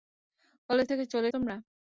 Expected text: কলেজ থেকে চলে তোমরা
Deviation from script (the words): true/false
false